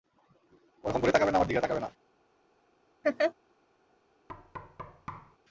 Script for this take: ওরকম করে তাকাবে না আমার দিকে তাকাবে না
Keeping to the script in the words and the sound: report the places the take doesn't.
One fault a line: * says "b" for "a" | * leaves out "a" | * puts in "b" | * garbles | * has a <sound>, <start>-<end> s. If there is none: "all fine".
* has a laugh, 3.0-3.3 s
* has a thud, 4.3-5.4 s